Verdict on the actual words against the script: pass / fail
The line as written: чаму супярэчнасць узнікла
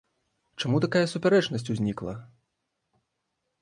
fail